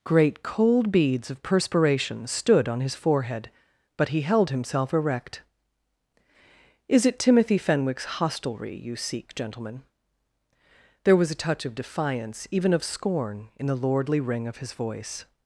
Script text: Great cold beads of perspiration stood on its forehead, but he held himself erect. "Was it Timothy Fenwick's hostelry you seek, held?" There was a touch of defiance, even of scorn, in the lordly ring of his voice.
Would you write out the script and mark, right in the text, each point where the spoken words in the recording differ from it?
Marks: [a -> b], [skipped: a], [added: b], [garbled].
Great cold beads of perspiration stood on [its -> his] forehead, but he held himself erect. ["Was -> Is] it Timothy Fenwick's hostelry you seek, [held?" -> gentlemen] There was a touch of defiance, even of scorn, in the lordly ring of his voice.